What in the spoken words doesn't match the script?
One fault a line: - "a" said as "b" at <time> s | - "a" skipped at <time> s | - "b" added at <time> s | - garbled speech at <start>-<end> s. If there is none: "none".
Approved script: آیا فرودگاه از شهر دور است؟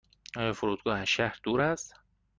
none